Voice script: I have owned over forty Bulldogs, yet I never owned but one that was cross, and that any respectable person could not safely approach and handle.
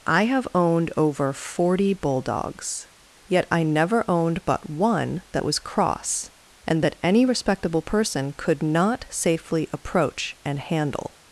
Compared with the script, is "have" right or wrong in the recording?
right